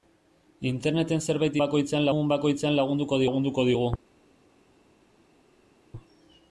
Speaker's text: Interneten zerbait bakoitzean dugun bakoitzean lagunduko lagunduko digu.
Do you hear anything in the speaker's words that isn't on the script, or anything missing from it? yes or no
no